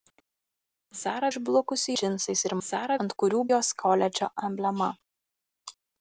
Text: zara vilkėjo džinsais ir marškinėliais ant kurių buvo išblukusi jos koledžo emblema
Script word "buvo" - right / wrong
wrong